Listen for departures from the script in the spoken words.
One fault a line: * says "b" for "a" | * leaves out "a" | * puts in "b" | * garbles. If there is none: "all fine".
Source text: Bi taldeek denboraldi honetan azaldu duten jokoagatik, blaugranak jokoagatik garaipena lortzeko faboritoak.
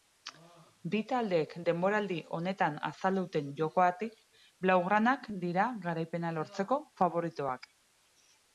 * says "dira" for "jokoagatik"